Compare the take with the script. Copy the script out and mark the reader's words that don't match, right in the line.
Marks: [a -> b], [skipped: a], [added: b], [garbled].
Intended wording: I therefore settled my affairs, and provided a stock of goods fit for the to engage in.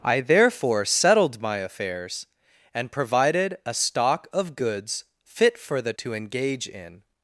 I therefore settled my affairs, and provided a stock of goods fit for the to engage in.